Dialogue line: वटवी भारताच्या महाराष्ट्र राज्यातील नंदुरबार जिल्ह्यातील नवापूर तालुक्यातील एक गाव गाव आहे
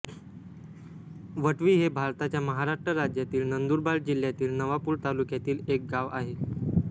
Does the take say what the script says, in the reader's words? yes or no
no